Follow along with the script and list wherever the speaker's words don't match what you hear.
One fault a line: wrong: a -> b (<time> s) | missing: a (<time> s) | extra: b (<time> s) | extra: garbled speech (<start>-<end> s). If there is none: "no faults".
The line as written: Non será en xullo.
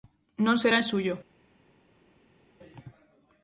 no faults